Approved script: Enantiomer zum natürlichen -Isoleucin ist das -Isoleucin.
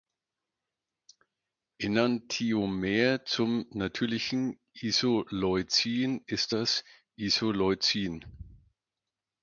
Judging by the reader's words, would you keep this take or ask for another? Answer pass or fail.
pass